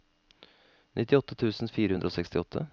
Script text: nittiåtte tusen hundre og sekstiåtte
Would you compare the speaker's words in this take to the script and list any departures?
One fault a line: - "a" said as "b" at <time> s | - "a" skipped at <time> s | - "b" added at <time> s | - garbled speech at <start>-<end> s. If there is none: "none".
- "fire" added at 1.8 s